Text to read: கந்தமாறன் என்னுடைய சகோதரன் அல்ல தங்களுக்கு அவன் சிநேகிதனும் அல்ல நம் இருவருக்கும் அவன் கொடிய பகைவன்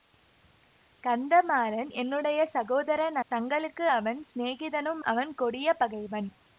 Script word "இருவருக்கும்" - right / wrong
wrong